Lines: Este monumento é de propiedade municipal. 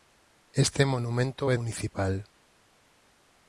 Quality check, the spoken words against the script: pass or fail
fail